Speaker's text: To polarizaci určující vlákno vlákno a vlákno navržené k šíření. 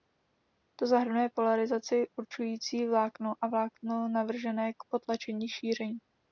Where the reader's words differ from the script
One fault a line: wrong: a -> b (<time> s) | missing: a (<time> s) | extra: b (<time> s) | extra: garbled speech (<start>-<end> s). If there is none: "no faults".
extra: zahrnuje (0.9 s)
missing: vlákno (3.3 s)
extra: potlačení (4.9 s)